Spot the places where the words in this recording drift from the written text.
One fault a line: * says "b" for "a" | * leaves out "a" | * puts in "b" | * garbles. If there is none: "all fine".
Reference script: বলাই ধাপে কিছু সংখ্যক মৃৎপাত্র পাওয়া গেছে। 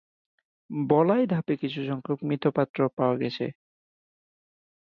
all fine